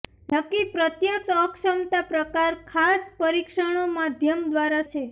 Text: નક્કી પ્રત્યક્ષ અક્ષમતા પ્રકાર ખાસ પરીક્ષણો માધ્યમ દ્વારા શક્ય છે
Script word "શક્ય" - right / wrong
wrong